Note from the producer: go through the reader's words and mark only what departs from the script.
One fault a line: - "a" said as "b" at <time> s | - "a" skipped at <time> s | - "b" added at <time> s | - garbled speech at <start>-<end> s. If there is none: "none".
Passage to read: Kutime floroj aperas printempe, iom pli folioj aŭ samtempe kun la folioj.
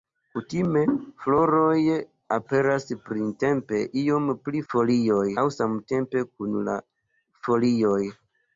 none